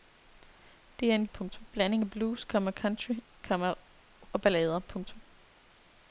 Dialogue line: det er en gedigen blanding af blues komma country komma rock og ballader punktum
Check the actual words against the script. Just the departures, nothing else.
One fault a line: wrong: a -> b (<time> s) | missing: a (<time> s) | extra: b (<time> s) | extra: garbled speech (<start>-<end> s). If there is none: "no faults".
wrong: gedigen -> punktum (1.2 s)
missing: rock (3.7 s)